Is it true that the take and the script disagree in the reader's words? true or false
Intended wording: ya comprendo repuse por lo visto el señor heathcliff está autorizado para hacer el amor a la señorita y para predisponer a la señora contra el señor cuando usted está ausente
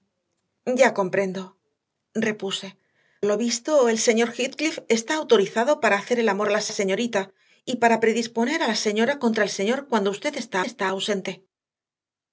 true